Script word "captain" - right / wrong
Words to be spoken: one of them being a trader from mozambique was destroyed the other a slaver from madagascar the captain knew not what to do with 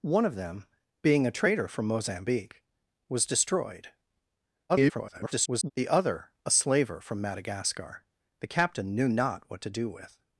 right